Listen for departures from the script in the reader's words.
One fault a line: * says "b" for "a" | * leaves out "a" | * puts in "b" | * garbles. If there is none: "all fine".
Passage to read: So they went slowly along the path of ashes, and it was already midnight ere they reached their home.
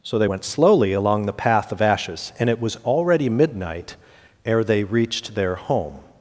all fine